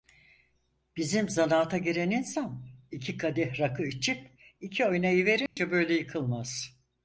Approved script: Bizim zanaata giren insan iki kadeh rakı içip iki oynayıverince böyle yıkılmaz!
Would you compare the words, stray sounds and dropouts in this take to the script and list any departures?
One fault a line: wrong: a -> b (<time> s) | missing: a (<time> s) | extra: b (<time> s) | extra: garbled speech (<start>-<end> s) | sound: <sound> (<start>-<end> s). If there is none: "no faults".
sound: dropout (5.5-5.6 s)